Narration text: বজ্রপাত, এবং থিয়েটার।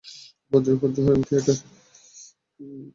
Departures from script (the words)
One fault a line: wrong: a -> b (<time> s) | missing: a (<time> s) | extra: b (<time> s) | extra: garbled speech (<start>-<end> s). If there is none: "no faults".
extra: ঝড় (1.0 s)